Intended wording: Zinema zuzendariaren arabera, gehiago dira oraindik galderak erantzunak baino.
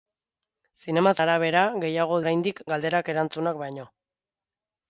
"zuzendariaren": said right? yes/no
no